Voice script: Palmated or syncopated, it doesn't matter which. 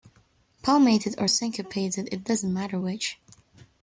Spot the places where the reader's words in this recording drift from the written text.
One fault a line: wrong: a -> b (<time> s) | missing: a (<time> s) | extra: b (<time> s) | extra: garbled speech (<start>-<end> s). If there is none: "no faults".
no faults